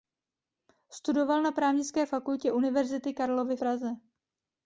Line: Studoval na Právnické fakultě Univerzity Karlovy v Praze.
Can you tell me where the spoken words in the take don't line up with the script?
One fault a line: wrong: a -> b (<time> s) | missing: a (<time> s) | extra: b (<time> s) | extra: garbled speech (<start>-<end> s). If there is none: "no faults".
missing: v (3.6 s)